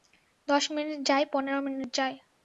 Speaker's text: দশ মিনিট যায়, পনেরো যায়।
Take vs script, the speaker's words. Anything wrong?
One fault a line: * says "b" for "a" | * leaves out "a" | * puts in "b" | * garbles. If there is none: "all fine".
* puts in "মিনিট"